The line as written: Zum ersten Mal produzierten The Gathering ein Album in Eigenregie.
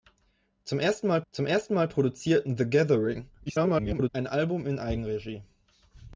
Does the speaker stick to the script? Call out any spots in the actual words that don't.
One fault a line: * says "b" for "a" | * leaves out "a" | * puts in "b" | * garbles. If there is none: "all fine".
* puts in "zum ersten Mal"
* garbles